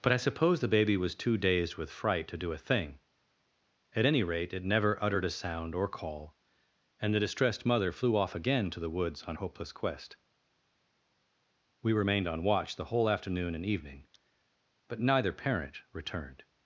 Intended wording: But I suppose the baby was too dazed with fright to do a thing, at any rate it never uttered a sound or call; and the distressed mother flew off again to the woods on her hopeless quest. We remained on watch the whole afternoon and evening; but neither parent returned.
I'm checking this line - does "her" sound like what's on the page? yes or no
no